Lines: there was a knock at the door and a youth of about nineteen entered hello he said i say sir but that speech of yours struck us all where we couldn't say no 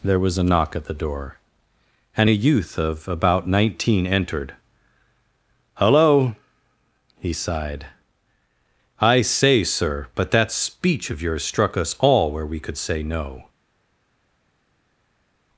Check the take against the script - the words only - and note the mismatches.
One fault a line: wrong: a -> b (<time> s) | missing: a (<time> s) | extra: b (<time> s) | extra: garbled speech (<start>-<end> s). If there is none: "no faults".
wrong: said -> sighed (7.3 s)
wrong: couldn't -> could (12.6 s)